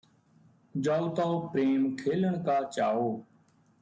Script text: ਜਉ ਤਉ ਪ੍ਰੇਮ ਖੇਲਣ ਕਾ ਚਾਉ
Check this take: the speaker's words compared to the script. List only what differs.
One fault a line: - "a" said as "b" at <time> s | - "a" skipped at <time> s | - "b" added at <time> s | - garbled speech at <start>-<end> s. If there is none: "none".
none